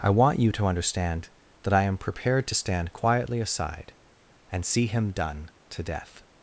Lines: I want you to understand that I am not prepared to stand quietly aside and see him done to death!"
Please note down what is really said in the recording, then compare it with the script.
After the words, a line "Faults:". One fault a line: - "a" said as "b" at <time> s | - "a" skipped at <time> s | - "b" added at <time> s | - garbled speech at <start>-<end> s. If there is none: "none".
I want you to understand that I am prepared to stand quietly aside and see him done to death!"
Faults:
- "not" skipped at 2.0 s